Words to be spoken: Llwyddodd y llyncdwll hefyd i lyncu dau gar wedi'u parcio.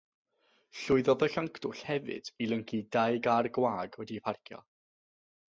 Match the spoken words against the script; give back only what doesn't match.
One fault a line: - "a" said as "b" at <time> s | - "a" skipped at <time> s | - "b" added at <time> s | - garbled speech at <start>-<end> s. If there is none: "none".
- "gwag" added at 3.6 s